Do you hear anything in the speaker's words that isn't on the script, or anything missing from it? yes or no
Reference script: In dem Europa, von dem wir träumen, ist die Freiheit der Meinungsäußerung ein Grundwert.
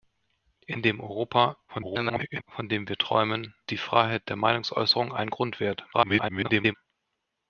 yes